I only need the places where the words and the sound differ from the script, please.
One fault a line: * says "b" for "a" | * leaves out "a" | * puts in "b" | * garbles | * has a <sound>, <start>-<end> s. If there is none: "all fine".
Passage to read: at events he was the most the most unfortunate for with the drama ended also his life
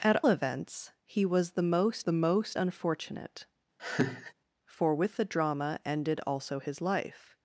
* has a laugh, 3.8-4.3 s